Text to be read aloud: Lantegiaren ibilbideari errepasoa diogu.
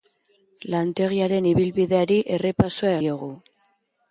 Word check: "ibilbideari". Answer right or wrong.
right